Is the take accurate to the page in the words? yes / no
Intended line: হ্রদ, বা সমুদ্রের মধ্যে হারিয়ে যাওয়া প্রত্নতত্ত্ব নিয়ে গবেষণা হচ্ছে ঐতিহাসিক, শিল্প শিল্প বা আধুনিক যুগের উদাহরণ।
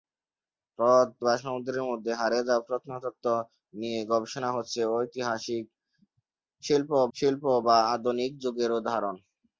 yes